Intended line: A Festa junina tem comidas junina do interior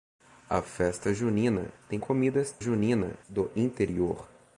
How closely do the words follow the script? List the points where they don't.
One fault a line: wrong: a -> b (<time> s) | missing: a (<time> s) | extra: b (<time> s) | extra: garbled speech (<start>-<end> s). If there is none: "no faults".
no faults